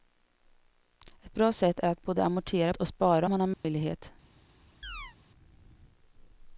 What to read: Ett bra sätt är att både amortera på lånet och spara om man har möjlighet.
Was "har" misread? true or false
false